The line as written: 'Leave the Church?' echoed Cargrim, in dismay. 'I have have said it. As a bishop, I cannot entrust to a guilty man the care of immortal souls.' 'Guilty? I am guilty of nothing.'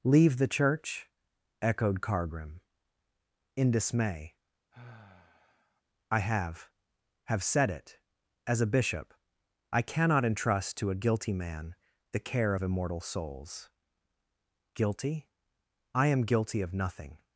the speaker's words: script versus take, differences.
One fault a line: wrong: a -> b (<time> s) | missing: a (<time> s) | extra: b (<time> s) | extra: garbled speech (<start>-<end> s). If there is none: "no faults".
no faults